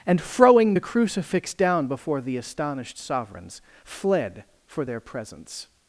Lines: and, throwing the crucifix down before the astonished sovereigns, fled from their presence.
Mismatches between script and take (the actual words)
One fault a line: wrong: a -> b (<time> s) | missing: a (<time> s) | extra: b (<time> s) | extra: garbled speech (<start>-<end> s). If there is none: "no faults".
wrong: from -> for (4.7 s)